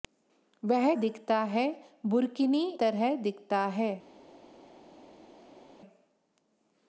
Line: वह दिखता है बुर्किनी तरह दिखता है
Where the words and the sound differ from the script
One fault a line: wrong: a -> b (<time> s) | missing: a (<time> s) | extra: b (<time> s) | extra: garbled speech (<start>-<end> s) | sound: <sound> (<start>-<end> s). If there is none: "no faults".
no faults